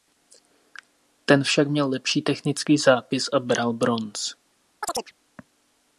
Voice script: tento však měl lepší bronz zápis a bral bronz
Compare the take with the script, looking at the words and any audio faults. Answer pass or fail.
fail